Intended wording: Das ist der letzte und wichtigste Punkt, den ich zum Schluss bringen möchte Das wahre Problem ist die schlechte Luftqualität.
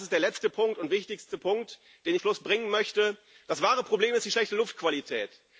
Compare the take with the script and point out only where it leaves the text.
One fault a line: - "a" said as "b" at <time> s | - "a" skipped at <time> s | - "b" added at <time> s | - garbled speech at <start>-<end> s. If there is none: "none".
- "ich zum" skipped at 2.1 s